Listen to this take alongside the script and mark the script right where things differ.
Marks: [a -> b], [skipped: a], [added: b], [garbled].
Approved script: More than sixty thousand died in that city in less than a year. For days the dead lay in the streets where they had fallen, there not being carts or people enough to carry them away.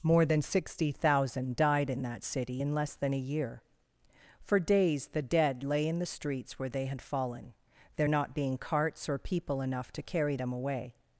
More than sixty thousand died in that city in less than a year. For days the dead lay in the streets where they had fallen, there not being carts or people enough to carry them away.